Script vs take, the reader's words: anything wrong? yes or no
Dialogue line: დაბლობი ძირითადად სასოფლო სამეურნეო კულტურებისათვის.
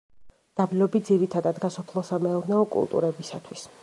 no